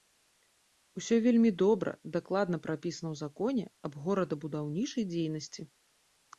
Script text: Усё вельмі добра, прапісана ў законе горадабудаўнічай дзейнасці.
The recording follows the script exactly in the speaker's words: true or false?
false